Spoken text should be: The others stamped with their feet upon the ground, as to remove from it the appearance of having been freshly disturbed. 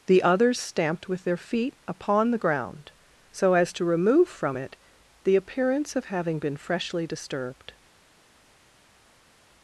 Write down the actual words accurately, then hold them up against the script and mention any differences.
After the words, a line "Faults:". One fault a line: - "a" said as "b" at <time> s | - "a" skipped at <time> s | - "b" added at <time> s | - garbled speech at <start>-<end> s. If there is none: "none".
The others stamped with their feet upon the ground, so as to remove from it the appearance of having been freshly disturbed.
Faults:
- "so" added at 3.3 s